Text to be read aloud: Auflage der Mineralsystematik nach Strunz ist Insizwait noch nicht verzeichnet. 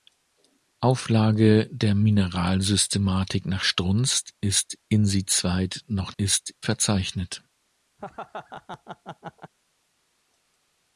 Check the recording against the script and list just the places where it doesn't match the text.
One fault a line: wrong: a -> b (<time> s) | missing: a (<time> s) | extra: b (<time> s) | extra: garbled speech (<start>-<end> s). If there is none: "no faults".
wrong: nicht -> ist (6.2 s)